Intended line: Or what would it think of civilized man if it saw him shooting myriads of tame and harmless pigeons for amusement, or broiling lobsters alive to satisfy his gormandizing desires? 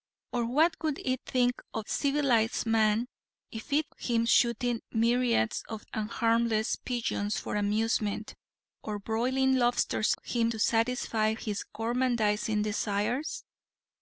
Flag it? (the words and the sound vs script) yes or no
yes